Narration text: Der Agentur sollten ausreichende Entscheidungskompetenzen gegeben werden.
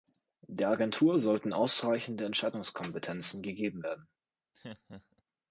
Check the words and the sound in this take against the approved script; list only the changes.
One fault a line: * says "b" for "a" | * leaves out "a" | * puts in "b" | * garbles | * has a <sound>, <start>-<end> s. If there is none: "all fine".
* has a laugh, 4.5-5.2 s